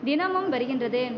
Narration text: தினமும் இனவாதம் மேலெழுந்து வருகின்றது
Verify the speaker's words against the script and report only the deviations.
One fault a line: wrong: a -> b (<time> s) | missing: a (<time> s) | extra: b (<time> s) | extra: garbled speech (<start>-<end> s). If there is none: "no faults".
missing: இனவாதம் மேலெழுந்து (0.5 s)